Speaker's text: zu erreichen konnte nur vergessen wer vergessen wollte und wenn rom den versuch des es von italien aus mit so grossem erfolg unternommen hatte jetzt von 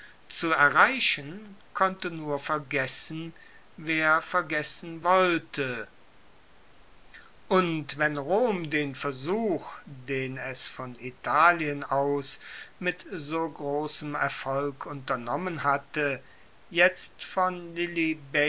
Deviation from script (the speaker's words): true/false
true